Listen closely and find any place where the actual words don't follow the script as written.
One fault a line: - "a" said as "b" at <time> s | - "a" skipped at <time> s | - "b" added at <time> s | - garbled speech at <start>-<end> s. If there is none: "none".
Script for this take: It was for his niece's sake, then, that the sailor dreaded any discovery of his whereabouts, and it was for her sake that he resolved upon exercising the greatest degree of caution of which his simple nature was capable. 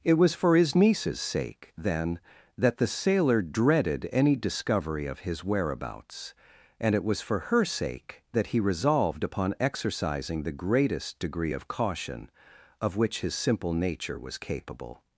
none